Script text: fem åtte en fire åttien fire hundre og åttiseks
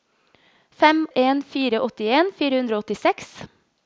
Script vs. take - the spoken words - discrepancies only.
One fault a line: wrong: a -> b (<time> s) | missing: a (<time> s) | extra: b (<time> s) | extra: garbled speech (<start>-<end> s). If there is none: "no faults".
missing: åtte (1.1 s)